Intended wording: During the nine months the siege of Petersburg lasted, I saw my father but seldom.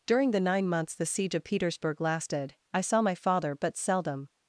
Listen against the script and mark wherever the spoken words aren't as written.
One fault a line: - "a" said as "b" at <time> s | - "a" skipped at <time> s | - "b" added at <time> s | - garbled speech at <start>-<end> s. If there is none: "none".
none